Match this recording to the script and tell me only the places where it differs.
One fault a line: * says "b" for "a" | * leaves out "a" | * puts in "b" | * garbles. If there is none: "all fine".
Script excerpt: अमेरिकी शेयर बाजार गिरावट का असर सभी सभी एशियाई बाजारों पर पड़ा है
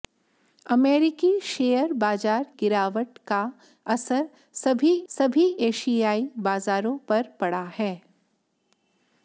all fine